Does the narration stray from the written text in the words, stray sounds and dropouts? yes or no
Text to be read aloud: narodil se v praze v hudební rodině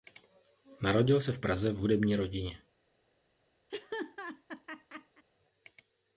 yes